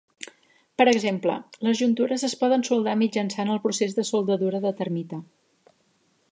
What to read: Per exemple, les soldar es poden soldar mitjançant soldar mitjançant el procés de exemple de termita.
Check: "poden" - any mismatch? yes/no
no